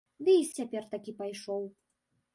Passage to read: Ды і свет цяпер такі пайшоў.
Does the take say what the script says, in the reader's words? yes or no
no